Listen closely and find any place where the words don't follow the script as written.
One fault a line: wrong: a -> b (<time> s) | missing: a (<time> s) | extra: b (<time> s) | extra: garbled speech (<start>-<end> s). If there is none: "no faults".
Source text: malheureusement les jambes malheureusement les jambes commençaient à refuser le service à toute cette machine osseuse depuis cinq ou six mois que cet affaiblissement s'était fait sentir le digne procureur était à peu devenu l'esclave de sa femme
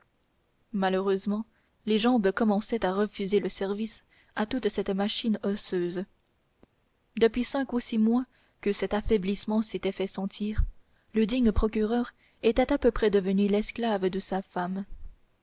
missing: malheureusement les jambes (2.3 s)
extra: près (12.9 s)